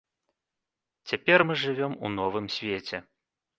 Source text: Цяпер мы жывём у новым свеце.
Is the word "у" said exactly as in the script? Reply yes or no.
yes